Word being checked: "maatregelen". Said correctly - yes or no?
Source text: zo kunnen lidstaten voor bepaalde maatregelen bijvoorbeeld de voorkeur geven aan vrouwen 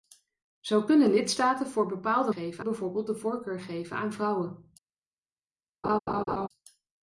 no